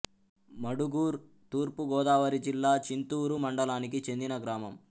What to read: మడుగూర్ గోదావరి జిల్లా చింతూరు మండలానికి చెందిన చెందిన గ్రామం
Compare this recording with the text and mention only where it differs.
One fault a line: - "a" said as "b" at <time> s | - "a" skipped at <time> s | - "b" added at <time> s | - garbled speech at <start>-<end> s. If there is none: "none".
- "తూర్పు" added at 1.5 s
- "చెందిన" skipped at 4.4 s